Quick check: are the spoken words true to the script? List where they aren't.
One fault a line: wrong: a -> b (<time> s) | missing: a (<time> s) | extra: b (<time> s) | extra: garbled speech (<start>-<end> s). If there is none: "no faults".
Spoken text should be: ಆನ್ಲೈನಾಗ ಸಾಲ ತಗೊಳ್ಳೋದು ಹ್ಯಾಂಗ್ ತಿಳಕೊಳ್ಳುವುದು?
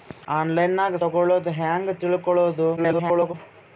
missing: ಸಾಲ (0.9 s)
extra: garbled speech (2.8-3.3 s)